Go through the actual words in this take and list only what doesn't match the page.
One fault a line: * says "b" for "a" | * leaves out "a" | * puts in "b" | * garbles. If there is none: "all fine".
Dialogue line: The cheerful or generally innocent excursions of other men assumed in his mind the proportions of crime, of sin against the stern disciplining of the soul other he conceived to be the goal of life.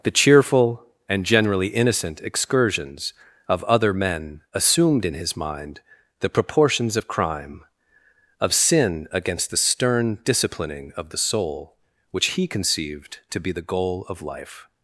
* says "and" for "or"
* says "which" for "other"